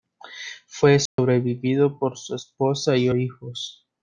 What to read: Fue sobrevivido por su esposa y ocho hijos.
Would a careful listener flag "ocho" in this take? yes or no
yes